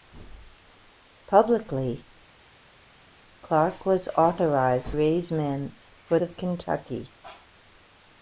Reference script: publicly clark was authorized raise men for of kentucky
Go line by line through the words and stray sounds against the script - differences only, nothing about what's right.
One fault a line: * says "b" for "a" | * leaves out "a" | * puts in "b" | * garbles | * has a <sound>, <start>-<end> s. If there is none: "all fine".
all fine